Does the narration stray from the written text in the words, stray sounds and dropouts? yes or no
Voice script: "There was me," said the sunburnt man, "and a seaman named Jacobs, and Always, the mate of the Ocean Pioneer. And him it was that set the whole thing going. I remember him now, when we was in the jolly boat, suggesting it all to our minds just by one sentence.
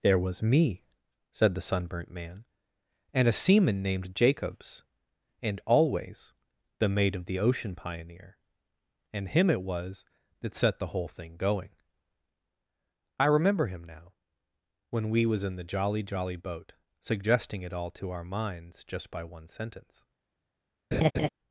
yes